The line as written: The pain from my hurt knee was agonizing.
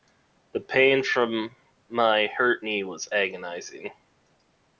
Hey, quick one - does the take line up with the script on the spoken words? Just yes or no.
yes